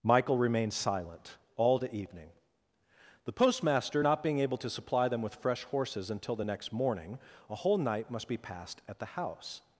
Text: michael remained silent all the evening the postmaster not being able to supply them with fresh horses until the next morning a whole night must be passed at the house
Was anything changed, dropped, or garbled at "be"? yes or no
no